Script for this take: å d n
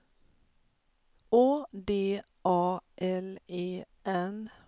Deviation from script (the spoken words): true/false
true